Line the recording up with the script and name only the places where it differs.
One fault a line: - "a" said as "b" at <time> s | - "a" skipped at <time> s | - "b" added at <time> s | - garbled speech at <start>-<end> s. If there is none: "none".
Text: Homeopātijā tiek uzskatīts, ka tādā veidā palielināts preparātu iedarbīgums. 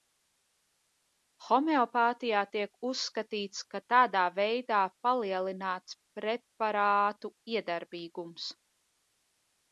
none